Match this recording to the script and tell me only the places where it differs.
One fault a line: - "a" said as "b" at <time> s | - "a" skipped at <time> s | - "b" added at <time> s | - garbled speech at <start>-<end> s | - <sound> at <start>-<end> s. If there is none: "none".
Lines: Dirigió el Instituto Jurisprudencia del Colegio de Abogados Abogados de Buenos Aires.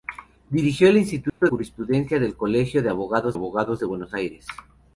- dropout at 1.3-1.4 s